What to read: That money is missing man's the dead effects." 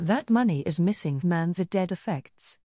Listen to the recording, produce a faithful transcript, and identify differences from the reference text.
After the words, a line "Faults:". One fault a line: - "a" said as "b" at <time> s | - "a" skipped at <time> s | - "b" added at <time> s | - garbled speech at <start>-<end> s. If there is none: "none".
That money is missing man's the dead effects."
Faults:
none